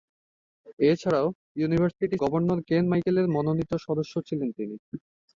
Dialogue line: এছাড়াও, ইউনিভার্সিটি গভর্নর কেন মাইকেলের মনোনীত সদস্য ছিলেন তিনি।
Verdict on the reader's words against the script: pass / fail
pass